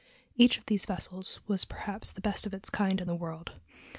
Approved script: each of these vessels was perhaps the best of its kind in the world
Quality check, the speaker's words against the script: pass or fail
pass